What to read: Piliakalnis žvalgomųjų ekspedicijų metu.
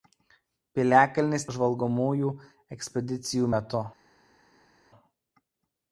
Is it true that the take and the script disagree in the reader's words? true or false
false